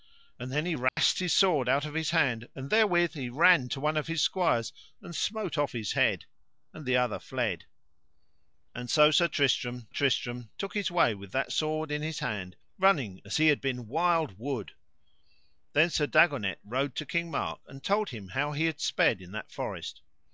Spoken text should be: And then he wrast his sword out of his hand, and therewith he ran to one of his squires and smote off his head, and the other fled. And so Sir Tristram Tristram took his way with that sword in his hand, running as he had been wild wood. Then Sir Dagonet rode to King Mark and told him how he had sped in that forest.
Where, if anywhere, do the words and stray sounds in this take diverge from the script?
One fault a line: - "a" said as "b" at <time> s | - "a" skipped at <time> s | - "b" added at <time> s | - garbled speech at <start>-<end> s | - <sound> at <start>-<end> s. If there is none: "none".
- dropout at 0.9-1.0 s